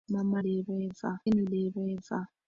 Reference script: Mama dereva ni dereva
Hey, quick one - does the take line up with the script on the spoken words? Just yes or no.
yes